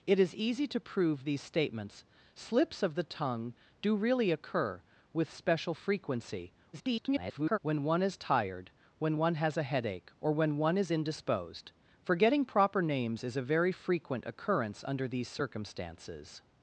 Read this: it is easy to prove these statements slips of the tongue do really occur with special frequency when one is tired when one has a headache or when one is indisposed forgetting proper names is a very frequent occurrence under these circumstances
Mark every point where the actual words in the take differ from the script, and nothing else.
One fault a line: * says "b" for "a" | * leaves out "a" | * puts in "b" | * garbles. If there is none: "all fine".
* garbles